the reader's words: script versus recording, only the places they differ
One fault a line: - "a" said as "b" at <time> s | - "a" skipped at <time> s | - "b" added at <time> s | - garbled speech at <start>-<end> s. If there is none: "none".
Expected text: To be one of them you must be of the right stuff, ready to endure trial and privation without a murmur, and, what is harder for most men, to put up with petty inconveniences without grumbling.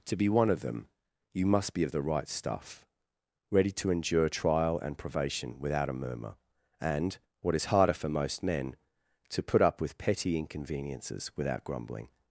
none